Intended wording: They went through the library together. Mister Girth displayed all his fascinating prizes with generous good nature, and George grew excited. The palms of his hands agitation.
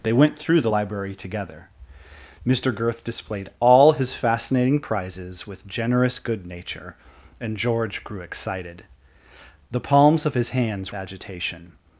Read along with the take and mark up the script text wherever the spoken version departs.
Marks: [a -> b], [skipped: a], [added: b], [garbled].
They went through the library together. Mister Girth displayed all his fascinating prizes with generous good nature, and George grew excited. The palms of his hands agitation.